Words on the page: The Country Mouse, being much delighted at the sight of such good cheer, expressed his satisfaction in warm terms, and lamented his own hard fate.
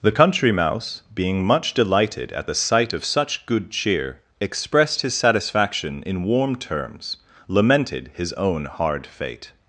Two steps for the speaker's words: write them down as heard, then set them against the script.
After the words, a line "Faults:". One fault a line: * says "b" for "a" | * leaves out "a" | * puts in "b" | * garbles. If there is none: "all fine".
The Country Mouse, being much delighted at the sight of such good cheer, expressed his satisfaction in warm terms, lamented his own hard fate.
Faults:
* leaves out "and"